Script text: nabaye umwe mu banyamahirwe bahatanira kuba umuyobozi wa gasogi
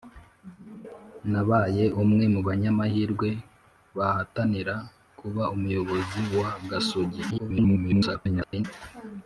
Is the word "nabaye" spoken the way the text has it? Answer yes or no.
yes